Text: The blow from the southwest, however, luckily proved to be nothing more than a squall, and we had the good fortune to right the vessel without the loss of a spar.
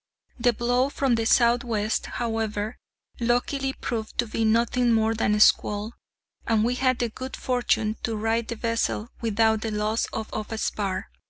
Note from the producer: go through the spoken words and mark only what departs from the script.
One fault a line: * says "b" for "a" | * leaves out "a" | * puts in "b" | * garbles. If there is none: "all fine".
* puts in "of"